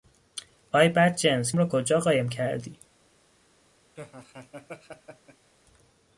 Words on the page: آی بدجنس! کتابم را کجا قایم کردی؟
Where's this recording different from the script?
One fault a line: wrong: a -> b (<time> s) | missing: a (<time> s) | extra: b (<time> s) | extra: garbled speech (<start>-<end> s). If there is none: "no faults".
missing: کتابم (1.5 s)